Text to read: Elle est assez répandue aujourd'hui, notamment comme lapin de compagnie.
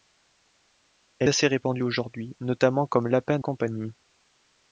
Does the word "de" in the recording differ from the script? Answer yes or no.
yes